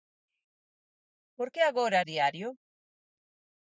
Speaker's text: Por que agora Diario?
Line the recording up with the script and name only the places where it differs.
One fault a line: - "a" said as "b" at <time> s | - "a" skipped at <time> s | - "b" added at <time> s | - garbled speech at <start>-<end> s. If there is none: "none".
none